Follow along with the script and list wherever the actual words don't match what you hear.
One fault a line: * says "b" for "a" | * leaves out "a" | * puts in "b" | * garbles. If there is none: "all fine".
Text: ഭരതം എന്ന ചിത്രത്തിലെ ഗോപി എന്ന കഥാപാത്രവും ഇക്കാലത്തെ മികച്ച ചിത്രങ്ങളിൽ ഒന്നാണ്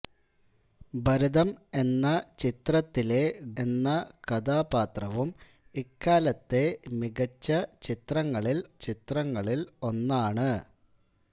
* leaves out "ഗോപി"
* puts in "ചിത്രങ്ങളിൽ"